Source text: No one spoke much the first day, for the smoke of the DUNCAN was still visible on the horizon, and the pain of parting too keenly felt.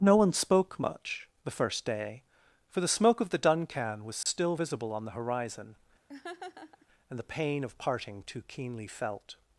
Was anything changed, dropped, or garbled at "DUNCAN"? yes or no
no